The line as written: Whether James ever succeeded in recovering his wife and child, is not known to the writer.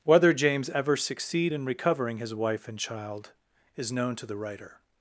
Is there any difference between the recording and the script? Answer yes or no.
yes